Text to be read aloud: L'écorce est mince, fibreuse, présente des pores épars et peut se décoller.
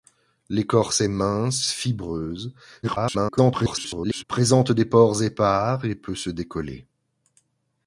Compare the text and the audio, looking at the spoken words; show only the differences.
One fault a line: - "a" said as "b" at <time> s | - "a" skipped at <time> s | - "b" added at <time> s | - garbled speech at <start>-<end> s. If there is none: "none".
- garbled speech at 2.8-4.2 s